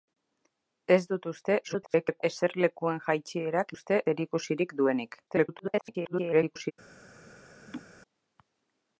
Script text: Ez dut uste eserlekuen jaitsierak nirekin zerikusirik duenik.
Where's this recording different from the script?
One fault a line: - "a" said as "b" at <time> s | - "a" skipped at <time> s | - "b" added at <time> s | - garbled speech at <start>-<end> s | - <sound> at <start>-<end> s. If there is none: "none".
- garbled speech at 1.6-2.2 s
- "nirekin" said as "uste" at 3.7 s
- garbled speech at 5.3-6.7 s
- laugh at 7.7-7.8 s